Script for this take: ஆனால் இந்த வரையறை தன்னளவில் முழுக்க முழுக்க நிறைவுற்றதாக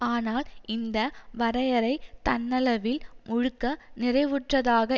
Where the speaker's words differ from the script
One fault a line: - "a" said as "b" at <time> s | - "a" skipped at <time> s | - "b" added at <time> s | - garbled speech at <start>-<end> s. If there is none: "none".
- "முழுக்க" skipped at 3.6 s